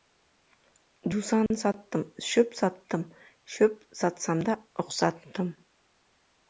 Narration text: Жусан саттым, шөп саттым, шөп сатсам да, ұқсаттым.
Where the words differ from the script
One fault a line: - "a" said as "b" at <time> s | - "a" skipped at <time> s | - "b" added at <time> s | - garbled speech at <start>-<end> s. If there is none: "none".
none